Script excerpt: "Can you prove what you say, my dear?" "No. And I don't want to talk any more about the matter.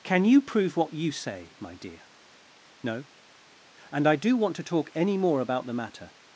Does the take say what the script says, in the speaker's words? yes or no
no